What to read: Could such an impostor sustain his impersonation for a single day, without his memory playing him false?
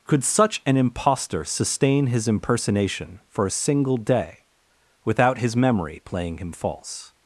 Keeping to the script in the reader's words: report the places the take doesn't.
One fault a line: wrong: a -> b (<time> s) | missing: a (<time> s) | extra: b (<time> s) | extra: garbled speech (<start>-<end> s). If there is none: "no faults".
no faults